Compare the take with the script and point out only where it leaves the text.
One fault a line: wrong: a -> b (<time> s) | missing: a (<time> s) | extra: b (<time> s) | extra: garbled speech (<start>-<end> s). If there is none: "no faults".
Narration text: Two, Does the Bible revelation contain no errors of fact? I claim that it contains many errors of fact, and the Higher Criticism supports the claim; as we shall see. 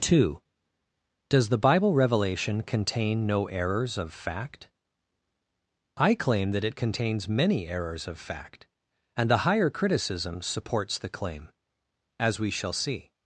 no faults